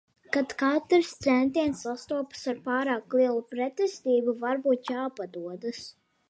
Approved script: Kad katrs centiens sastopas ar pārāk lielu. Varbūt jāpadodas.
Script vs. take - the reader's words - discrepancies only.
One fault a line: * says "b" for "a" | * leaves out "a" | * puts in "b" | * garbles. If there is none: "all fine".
* puts in "pretestību"